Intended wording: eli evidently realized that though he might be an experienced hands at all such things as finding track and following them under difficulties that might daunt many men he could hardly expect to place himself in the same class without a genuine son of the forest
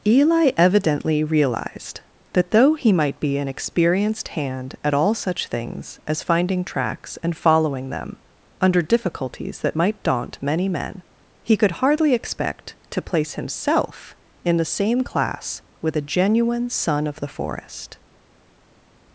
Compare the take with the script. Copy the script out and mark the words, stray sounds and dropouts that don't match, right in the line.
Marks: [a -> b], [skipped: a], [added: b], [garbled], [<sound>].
eli evidently realized that though he might be an experienced [hands -> hand] at all such things as finding [track -> tracks] and following them under difficulties that might daunt many men he could hardly expect to place himself in the same class [without -> with] a genuine son of the forest